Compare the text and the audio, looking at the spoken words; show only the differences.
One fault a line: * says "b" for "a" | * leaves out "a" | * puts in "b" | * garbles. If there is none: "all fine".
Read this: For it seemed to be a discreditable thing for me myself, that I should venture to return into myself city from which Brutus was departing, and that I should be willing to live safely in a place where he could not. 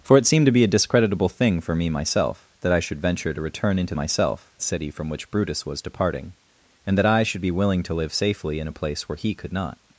all fine